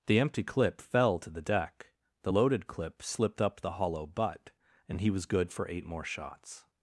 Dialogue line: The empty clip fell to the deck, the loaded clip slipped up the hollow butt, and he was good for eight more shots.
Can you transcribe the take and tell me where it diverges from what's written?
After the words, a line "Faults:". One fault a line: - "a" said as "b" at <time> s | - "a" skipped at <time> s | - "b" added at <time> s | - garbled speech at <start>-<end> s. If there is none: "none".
The empty clip fell to the deck, the loaded clip slipped up the hollow butt, and he was good for eight more shots.
Faults:
none